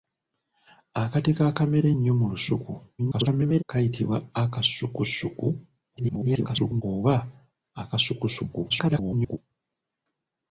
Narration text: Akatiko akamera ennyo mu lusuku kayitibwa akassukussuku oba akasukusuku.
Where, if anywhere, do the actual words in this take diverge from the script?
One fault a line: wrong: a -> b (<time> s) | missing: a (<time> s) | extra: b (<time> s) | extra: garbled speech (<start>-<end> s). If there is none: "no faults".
extra: garbled speech (3.0-3.6 s)
extra: garbled speech (6.0-6.8 s)
extra: garbled speech (8.7-9.4 s)